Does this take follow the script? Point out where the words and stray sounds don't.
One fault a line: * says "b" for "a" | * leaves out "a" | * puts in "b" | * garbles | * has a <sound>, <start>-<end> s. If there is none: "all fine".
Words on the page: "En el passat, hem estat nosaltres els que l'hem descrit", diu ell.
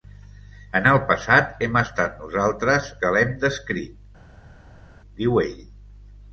* leaves out "els"